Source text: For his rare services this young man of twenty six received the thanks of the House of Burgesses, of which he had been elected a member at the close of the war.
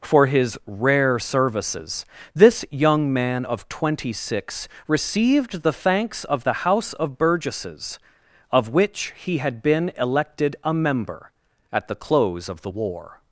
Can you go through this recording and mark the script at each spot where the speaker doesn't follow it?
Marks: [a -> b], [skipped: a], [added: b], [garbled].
For his rare services this young man of twenty six received the thanks of the House of Burgesses, of which he had been elected a member at the close of the war.